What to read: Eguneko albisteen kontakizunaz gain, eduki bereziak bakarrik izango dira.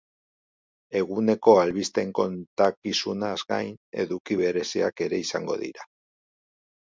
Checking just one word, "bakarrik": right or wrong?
wrong